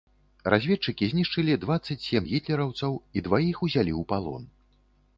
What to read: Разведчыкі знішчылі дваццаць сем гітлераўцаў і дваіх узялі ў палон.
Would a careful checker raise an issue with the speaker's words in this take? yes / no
no